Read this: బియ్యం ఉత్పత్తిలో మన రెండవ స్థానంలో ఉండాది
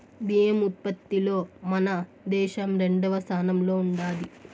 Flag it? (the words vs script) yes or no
yes